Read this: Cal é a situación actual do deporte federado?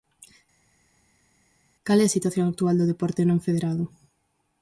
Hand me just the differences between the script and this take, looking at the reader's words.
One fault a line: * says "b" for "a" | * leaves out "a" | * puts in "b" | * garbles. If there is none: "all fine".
* puts in "non"